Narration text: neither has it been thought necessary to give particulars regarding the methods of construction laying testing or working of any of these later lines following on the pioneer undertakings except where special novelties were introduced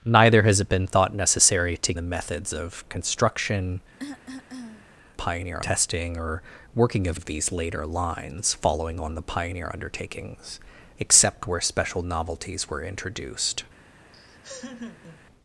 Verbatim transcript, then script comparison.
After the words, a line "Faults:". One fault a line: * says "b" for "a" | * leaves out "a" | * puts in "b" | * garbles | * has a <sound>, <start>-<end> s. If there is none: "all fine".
neither has it been thought necessary to the methods of construction pioneer testing or working of of these later lines following on the pioneer undertakings except where special novelties were introduced
Faults:
* leaves out "give particulars regarding"
* has a cough, 4.0-4.9 s
* says "pioneer" for "laying"
* leaves out "any"
* has a laugh, 14.1-15.2 s